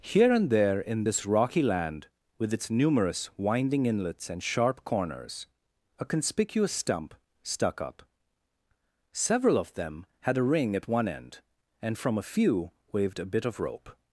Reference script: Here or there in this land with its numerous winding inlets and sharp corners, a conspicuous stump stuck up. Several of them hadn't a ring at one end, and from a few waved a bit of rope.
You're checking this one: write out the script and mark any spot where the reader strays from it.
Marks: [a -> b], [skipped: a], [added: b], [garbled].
Here [or -> and] there in this [added: rocky] land with its numerous winding inlets and sharp corners, a conspicuous stump stuck up. Several of them [hadn't -> had] a ring at one end, and from a few waved a bit of rope.